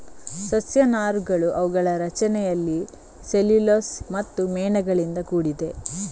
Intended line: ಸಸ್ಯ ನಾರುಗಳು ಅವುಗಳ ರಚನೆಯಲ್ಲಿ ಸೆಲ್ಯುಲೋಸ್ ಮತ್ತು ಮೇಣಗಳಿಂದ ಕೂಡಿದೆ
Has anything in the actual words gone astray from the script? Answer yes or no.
no